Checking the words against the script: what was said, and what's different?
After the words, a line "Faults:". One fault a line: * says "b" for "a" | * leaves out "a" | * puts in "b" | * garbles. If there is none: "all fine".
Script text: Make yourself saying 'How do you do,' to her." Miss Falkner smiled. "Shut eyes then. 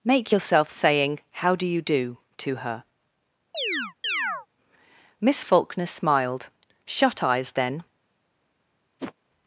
Make yourself saying 'How do you do,' to her." Miss Falkner smiled. "Shut eyes then.
Faults:
all fine